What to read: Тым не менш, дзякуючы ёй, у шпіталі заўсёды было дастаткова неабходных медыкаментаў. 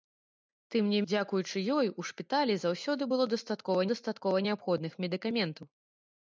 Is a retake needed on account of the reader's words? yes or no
yes